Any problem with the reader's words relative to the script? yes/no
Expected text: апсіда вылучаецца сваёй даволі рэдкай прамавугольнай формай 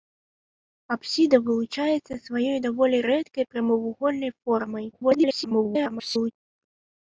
yes